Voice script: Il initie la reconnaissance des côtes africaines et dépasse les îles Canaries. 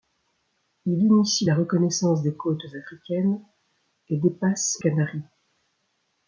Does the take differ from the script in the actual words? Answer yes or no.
yes